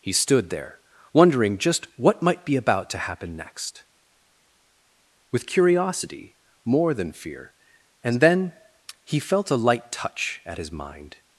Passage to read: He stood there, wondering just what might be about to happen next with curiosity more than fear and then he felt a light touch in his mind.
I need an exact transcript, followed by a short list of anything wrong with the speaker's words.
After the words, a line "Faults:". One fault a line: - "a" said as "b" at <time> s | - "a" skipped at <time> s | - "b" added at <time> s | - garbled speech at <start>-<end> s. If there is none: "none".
He stood there, wondering just what might be about to happen next with curiosity more than fear and then he felt a light touch at his mind.
Faults:
- "in" said as "at" at 10.4 s